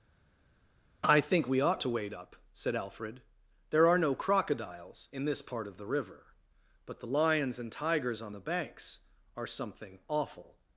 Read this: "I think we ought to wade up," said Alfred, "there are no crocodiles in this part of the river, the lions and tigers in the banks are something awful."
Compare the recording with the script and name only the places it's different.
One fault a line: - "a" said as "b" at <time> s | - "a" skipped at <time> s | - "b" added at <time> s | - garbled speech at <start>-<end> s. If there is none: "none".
- "but" added at 6.9 s
- "in" said as "on" at 8.2 s